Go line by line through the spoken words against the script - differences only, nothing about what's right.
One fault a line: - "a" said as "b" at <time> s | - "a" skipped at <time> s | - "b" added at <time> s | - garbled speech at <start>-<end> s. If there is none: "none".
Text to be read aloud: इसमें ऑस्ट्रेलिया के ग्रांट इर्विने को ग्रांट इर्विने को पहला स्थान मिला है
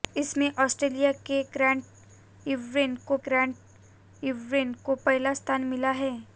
none